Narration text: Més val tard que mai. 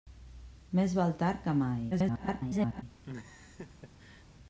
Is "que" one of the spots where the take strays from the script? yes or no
no